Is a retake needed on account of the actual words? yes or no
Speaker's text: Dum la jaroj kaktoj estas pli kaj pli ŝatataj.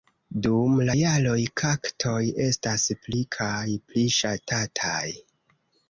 no